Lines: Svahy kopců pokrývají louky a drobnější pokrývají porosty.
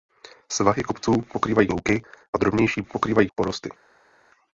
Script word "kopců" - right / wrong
right